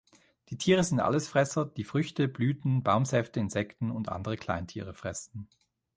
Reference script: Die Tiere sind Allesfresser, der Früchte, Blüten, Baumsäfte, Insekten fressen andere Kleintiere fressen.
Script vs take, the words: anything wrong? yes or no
yes